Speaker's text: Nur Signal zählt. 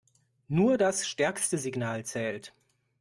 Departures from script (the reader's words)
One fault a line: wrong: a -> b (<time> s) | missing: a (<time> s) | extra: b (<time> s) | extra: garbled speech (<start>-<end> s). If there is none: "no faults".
extra: das stärkste (0.8 s)